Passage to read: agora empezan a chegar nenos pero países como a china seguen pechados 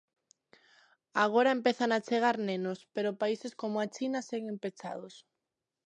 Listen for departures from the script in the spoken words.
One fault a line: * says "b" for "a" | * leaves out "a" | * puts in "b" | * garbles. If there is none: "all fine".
all fine